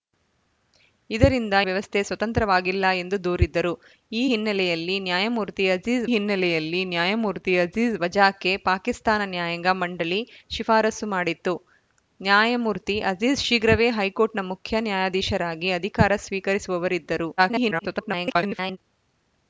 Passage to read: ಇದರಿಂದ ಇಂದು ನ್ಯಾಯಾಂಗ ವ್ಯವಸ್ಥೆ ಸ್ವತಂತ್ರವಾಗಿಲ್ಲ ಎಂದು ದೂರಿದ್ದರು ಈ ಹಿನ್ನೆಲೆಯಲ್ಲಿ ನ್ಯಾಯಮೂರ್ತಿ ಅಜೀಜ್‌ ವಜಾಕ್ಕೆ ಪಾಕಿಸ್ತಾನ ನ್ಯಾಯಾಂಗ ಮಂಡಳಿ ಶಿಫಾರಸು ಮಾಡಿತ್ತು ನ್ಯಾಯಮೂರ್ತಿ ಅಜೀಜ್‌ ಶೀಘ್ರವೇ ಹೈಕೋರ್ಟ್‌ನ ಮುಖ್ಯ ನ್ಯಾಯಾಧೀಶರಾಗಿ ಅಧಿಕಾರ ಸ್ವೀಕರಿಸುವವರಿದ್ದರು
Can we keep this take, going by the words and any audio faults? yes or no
no